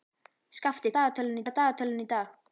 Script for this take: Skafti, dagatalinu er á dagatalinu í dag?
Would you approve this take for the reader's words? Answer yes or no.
yes